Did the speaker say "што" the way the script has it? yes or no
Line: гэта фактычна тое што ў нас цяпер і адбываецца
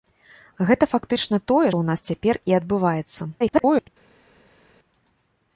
no